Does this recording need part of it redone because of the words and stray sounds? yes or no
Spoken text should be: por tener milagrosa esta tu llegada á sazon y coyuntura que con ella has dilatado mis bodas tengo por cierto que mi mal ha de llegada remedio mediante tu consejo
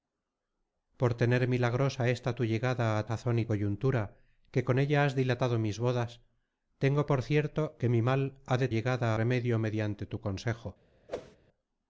yes